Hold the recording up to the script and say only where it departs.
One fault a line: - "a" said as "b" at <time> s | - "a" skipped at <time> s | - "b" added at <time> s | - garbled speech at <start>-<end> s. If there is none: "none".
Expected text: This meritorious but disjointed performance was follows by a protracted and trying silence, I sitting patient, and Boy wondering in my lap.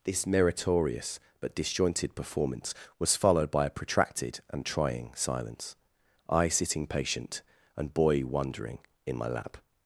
- "follows" said as "followed" at 3.1 s